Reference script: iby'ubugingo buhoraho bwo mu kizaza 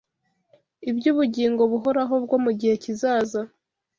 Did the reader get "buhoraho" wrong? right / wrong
right